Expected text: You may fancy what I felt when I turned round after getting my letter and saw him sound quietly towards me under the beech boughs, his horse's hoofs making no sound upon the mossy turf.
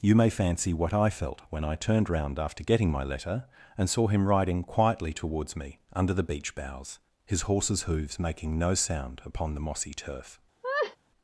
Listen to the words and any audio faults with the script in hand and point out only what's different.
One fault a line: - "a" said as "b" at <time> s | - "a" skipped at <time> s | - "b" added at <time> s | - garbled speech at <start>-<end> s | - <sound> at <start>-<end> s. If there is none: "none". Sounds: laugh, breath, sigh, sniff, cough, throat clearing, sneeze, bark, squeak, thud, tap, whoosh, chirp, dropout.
- "sound" said as "riding" at 4.3 s
- laugh at 10.6-11.0 s